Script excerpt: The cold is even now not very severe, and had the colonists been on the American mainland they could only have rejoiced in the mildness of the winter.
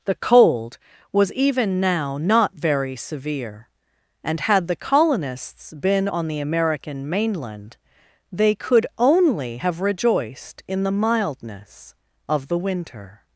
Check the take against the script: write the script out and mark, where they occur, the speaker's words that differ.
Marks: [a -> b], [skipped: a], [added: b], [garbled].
The cold [is -> was] even now not very severe, and had the colonists been on the American mainland they could only have rejoiced in the mildness of the winter.